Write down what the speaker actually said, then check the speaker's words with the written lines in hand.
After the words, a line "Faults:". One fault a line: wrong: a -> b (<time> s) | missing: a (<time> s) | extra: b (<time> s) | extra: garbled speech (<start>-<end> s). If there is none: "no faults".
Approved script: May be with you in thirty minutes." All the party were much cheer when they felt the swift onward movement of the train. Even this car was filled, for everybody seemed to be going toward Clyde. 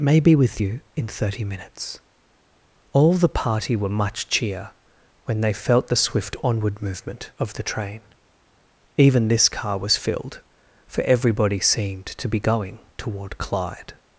May be with you in thirty minutes." All the party were much cheer when they felt the swift onward movement of the train. Even this car was filled, for everybody seemed to be going toward Clyde.
Faults:
no faults